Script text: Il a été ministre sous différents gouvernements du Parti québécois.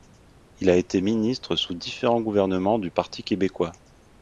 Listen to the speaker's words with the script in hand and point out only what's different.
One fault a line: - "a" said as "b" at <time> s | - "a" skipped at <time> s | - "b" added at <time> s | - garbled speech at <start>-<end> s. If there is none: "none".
none